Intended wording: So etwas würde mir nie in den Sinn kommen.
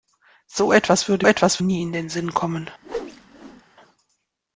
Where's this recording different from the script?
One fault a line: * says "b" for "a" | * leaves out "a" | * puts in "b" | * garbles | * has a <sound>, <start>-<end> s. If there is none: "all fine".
* says "etwas" for "mir"
* has a whoosh, 2.8-3.6 s